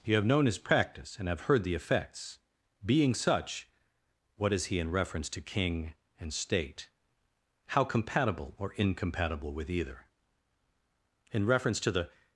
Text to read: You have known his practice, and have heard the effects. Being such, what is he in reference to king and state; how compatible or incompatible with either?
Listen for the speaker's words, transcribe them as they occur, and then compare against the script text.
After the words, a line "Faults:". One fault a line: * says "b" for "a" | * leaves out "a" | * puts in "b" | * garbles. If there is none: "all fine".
You have known his practice, and have heard the effects. Being such, what is he in reference to king and state; how compatible or incompatible with either? In reference to the
Faults:
* puts in "In reference to the"